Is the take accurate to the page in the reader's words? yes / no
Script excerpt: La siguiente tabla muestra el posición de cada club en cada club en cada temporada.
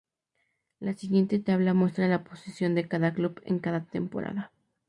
no